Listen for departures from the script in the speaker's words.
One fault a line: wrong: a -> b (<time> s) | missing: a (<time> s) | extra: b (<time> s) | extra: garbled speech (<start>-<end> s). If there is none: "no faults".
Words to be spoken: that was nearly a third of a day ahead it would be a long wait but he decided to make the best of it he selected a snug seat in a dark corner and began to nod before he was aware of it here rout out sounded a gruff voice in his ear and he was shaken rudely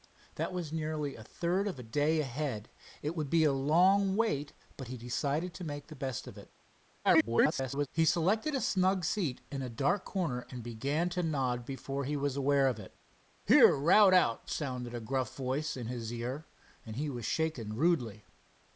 extra: garbled speech (7.0-7.9 s)